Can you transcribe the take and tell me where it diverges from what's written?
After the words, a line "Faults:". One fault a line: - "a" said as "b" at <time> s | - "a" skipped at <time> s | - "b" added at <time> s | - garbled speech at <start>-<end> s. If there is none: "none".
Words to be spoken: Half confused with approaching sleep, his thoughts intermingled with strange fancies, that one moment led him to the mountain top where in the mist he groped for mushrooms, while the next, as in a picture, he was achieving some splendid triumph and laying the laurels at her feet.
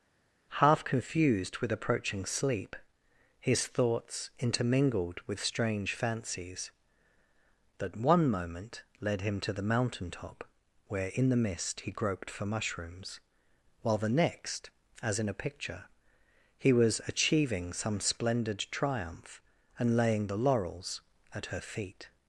Half confused with approaching sleep, his thoughts intermingled with strange fancies, that one moment led him to the mountain top where in the mist he groped for mushrooms, while the next, as in a picture, he was achieving some splendid triumph and laying the laurels at her feet.
Faults:
none